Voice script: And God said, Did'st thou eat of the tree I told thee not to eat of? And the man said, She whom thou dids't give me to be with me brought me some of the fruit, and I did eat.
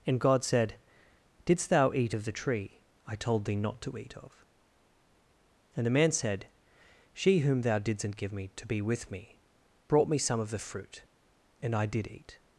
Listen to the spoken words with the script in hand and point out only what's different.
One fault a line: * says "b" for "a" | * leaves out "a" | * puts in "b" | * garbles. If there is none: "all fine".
all fine